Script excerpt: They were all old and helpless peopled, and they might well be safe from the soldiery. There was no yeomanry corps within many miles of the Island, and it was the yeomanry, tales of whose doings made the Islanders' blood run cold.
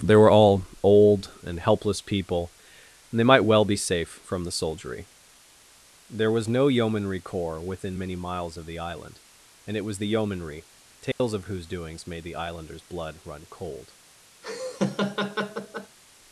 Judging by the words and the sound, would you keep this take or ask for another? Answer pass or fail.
fail